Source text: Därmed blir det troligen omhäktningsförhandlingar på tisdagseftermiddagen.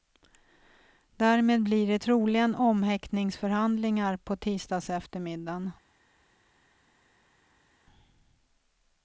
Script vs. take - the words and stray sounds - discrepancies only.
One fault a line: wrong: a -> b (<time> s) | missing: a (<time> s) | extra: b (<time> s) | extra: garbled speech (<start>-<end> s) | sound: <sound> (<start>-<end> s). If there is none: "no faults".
no faults